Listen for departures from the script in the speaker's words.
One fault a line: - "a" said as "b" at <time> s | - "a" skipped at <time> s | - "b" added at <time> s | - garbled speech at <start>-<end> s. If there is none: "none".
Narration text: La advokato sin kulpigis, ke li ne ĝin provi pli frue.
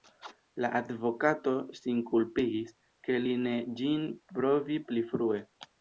none